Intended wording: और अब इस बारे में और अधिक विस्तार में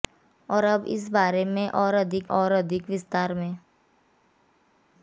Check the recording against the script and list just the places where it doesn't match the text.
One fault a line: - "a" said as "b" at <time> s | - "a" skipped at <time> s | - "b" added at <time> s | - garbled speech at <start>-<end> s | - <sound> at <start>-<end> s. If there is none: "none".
- "और अधिक" added at 2.3 s